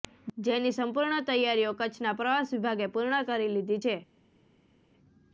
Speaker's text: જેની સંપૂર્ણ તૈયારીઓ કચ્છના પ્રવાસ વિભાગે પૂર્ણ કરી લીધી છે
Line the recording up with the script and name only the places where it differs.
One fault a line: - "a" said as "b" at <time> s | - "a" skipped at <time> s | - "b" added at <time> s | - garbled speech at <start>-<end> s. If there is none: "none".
none